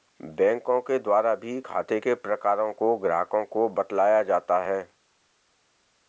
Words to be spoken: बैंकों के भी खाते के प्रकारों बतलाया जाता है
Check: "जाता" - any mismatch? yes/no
no